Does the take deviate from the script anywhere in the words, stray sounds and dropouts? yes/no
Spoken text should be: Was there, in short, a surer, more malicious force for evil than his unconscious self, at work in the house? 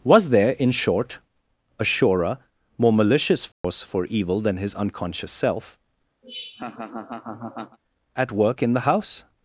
yes